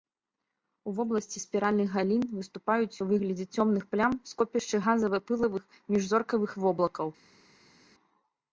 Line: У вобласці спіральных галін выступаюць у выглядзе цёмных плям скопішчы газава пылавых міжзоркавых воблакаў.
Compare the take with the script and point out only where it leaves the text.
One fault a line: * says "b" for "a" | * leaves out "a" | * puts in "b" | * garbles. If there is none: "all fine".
all fine